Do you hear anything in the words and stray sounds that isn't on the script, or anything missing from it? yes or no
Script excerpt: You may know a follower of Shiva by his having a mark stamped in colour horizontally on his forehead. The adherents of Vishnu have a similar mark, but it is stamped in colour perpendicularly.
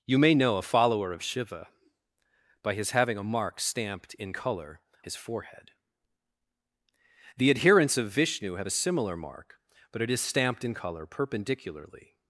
yes